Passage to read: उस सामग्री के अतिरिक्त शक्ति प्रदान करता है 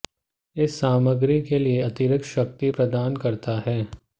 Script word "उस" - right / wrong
wrong